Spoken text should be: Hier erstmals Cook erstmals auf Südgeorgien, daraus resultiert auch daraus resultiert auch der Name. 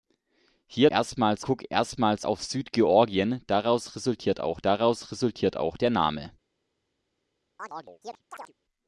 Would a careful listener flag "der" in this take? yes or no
no